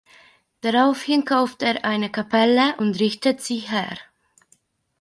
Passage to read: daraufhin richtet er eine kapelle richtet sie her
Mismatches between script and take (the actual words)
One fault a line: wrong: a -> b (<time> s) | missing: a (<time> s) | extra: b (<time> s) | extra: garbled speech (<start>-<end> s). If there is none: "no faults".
wrong: richtet -> kauft (1.2 s)
extra: und (2.8 s)